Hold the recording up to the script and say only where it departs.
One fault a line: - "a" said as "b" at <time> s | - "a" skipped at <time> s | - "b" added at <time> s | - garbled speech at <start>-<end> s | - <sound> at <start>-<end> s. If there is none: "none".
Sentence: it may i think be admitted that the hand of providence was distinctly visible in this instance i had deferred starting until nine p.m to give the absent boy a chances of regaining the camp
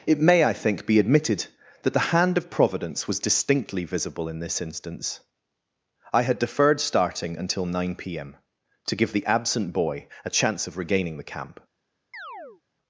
- "chances" said as "chance" at 10.3 s
- chirp at 12.1-12.6 s